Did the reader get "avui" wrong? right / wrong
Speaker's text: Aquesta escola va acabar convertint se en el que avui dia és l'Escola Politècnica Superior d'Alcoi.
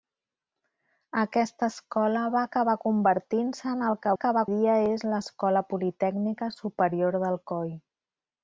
wrong